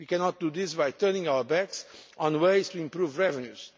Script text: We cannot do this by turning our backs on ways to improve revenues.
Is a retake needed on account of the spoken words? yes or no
no